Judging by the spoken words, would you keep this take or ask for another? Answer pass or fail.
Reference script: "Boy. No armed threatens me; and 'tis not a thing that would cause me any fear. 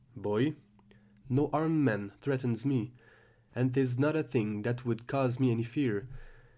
fail